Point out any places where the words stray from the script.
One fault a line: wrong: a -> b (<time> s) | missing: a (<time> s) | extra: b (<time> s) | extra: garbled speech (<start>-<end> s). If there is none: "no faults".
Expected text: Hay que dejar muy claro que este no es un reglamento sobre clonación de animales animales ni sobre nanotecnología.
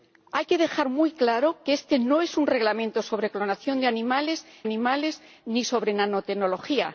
no faults